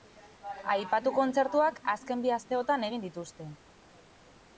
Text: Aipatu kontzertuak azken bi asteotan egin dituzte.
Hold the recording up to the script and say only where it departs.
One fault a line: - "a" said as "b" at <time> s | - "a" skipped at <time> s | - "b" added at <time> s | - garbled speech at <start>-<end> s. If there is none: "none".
none